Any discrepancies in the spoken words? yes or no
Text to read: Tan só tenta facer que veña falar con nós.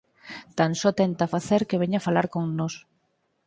no